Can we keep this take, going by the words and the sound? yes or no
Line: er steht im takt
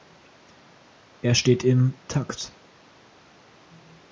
yes